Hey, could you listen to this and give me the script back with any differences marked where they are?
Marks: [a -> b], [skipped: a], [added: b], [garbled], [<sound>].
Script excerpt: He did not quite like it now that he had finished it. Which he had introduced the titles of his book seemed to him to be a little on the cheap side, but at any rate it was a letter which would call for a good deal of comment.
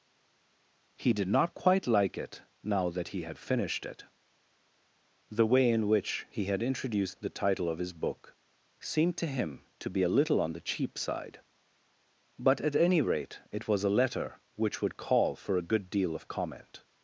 He did not quite like it now that he had finished it. [added: The way in] Which he had introduced the [titles -> title] of his book seemed to him to be a little on the cheap side, but at any rate it was a letter which would call for a good deal of comment.